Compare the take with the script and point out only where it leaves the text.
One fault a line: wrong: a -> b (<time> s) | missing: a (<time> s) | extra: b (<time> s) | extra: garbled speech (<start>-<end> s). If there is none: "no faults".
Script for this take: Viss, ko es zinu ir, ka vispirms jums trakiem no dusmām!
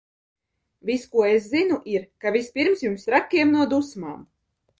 no faults